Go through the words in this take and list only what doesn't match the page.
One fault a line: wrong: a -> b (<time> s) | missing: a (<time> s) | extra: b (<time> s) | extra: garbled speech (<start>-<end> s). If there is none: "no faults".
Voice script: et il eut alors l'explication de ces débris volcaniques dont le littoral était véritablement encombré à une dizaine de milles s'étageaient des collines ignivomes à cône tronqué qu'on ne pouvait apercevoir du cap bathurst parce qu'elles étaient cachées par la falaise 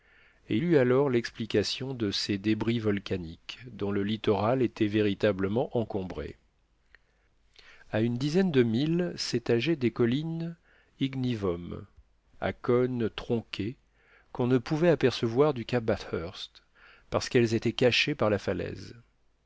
missing: il (0.6 s)